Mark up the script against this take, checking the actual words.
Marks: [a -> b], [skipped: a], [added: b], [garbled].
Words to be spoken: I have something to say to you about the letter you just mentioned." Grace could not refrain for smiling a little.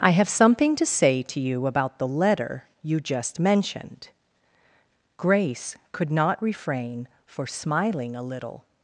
I have something to say to you about the letter you just mentioned." Grace could not refrain for smiling a little.